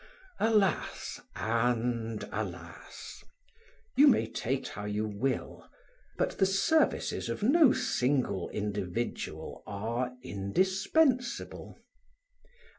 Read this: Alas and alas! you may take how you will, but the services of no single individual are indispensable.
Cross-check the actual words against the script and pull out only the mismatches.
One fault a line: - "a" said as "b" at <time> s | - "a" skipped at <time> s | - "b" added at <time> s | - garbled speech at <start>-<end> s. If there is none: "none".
none